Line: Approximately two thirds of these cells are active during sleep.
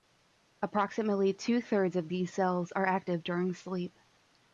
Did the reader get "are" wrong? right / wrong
right